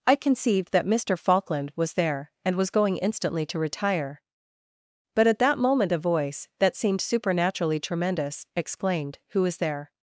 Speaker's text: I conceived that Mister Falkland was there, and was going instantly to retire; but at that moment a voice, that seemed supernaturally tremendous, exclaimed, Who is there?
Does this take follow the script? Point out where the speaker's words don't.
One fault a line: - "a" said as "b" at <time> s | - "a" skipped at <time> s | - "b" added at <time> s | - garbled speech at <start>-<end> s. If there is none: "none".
none